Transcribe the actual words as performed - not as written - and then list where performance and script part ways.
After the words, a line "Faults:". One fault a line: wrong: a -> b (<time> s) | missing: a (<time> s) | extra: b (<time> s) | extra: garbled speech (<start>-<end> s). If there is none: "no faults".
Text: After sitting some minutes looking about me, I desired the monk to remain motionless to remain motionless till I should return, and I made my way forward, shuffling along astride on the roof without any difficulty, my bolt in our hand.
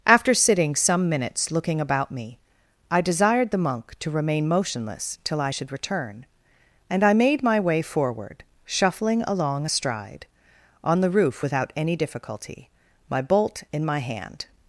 After sitting some minutes looking about me, I desired the monk to remain motionless till I should return, and I made my way forward, shuffling along astride on the roof without any difficulty, my bolt in my hand.
Faults:
missing: to remain motionless (5.2 s)
wrong: our -> my (13.8 s)